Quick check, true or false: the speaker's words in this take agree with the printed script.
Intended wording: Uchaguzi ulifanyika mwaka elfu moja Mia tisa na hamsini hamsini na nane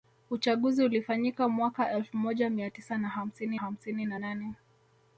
true